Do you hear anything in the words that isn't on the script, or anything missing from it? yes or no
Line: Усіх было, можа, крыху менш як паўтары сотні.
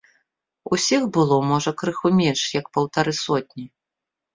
no